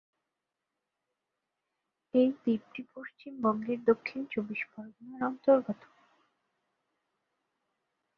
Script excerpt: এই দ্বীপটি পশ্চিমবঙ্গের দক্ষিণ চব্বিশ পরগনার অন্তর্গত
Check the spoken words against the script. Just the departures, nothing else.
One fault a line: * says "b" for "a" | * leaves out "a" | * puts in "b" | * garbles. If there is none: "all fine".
all fine